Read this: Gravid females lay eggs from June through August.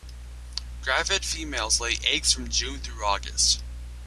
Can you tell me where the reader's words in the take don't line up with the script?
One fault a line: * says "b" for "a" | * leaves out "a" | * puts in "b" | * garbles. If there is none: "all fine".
all fine